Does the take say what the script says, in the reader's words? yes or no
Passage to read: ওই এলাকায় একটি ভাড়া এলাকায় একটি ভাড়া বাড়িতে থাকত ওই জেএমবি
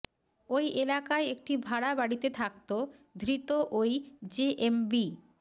no